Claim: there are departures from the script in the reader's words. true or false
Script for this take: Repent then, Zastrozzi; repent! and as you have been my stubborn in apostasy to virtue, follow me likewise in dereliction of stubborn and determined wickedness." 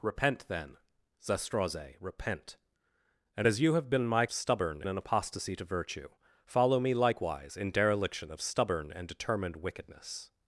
false